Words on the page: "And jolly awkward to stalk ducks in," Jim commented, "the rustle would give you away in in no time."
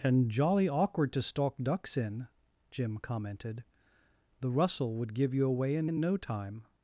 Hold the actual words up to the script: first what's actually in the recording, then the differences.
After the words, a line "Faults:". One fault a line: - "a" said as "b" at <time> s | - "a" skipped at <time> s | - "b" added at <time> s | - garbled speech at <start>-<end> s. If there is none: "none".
"And jolly awkward to stalk ducks in," Jim commented, "the rustle would give you away in in no time."
Faults:
none